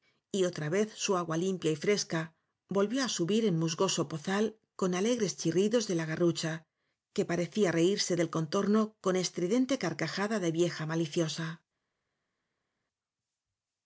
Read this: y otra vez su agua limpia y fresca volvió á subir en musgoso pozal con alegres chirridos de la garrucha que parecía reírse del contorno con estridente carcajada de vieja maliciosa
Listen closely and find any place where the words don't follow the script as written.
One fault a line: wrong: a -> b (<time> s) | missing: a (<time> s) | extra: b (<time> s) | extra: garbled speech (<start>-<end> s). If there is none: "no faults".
no faults